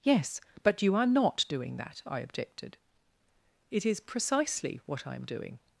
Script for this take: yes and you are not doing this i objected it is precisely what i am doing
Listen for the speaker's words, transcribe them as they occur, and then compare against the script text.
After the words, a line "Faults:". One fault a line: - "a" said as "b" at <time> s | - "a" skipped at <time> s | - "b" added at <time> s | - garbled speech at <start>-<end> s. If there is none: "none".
yes but you are not doing that i objected it is precisely what i am doing
Faults:
- "and" said as "but" at 0.6 s
- "this" said as "that" at 1.8 s